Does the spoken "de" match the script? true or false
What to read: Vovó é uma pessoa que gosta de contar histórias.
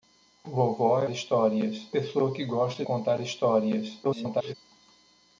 false